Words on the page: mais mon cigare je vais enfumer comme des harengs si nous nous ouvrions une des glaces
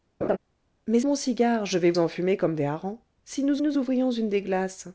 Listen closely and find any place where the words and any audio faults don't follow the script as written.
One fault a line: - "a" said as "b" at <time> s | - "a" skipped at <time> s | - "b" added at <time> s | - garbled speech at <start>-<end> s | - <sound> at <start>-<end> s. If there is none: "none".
- laugh at 0.2-0.4 s